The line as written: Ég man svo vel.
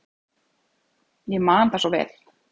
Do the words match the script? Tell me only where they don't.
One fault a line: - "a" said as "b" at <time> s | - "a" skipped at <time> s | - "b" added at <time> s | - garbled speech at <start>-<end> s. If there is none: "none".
- "það" added at 1.7 s